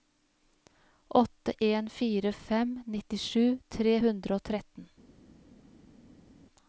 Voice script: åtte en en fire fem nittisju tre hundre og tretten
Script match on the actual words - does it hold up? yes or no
no